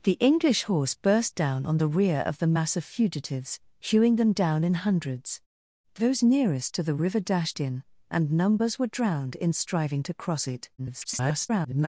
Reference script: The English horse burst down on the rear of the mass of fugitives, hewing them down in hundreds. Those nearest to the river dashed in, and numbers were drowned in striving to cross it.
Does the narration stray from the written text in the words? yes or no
yes